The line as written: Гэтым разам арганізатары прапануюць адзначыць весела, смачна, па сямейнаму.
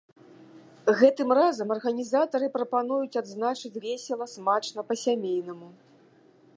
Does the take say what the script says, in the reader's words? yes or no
yes